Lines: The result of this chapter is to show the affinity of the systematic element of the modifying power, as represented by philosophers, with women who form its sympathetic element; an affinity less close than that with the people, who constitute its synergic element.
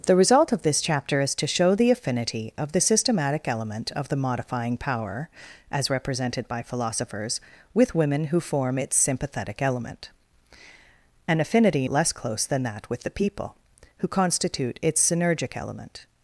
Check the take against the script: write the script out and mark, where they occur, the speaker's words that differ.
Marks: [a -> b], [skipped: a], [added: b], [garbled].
The result of this chapter is to show the affinity of the systematic element of the modifying power, as represented by philosophers, with women who form its sympathetic element; an affinity less close than that with the people, who constitute its synergic element.